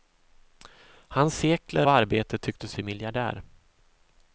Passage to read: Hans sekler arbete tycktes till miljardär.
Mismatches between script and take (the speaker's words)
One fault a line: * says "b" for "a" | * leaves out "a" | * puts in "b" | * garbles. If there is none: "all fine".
all fine